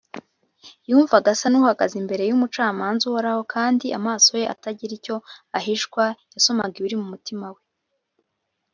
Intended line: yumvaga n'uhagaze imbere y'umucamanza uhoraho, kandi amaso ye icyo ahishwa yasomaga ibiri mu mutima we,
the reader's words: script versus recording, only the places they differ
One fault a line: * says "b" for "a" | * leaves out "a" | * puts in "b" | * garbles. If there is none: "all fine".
* puts in "asa"
* puts in "atagira"